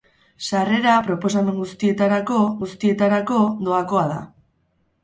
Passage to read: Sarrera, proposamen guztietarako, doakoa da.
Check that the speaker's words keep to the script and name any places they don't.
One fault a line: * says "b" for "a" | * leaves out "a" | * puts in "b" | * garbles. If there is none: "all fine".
* puts in "guztietarako"